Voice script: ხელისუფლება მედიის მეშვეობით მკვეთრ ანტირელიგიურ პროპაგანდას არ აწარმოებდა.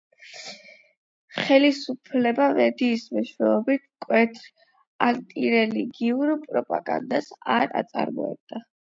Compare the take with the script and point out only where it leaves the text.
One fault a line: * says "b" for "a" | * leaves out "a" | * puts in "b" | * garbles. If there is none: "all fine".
all fine